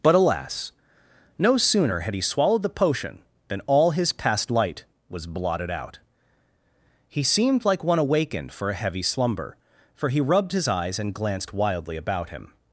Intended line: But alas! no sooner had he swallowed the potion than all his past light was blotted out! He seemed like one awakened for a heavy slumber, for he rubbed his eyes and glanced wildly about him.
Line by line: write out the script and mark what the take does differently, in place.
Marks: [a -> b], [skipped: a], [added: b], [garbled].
But alas! no sooner had he swallowed the potion than all his past light was blotted out! He seemed like one awakened for a heavy slumber, for he rubbed his eyes and glanced wildly about him.